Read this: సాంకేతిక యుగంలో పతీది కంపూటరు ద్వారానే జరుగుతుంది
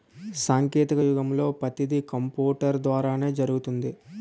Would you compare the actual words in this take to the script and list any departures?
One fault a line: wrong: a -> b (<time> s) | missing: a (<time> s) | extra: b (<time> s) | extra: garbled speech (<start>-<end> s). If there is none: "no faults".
no faults